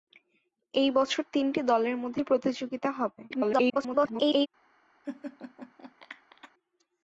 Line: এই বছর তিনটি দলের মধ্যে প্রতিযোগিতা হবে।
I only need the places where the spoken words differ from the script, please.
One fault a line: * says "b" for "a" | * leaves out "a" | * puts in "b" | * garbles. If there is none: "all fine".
* garbles